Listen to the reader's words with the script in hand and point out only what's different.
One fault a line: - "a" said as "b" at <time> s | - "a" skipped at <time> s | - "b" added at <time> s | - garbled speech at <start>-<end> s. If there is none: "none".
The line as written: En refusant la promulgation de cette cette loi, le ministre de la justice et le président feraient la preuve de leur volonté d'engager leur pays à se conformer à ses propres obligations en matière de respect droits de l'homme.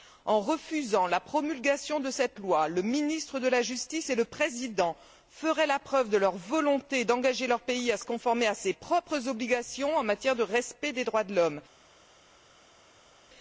- "cette" skipped at 2.4 s
- "des" added at 10.9 s